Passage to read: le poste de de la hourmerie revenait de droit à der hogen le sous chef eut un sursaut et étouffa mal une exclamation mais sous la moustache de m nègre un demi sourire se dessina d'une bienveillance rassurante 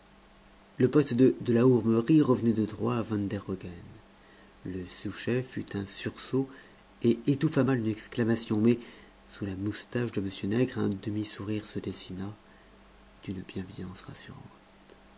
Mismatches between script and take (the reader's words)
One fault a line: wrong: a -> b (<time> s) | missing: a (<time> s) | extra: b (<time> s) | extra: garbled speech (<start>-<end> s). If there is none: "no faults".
extra: van (3.0 s)